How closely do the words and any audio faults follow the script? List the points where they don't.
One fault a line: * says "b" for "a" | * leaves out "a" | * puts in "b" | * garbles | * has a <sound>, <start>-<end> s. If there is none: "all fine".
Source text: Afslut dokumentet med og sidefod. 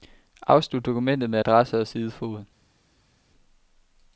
* puts in "adresse"